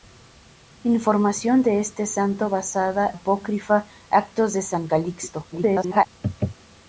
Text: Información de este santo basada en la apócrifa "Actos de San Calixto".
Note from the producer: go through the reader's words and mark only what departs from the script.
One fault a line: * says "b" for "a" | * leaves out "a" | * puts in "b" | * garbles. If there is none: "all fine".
* leaves out "en la"
* garbles